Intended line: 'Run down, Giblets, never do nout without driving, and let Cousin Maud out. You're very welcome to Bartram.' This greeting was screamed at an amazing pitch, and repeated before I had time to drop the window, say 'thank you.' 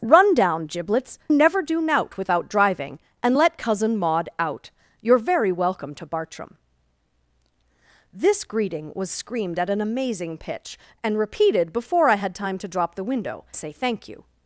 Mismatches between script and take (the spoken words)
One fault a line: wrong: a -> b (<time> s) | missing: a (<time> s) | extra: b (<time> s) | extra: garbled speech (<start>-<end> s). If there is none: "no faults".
no faults